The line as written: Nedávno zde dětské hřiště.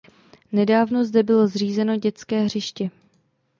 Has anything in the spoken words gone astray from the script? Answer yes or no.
yes